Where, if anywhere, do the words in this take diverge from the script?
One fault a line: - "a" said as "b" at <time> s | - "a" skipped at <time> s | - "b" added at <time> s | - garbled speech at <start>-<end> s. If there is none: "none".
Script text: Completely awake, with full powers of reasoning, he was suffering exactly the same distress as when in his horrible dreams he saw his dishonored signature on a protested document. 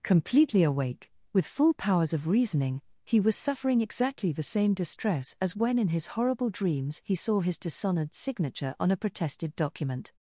none